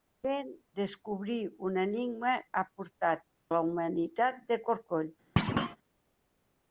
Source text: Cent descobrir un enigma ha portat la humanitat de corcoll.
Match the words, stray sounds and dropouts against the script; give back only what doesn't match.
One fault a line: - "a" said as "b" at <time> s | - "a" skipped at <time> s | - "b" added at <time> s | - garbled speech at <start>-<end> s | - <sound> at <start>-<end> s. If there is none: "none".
- thud at 5.4-5.8 s